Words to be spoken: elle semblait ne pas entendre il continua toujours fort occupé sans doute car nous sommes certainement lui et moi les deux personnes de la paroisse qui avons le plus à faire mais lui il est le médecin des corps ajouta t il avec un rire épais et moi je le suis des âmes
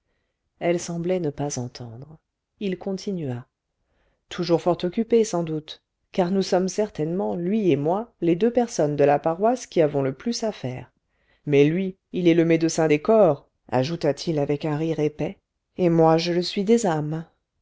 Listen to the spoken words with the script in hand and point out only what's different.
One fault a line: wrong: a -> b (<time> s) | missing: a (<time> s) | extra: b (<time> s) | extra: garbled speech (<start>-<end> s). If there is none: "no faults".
no faults